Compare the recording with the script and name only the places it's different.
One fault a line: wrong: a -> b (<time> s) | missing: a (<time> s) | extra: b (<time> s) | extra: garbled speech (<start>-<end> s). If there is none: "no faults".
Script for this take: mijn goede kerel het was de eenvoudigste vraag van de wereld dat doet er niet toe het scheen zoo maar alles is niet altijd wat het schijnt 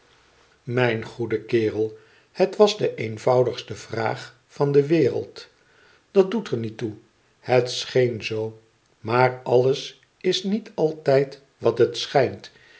no faults